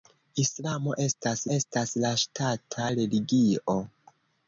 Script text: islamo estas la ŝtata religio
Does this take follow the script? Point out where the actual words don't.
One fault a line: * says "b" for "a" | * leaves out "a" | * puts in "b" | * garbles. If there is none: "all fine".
* puts in "estas"